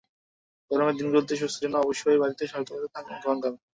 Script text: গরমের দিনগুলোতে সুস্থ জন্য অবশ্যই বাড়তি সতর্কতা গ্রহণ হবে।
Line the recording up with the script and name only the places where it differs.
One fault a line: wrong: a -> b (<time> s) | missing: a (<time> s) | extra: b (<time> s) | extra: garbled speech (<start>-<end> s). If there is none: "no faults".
no faults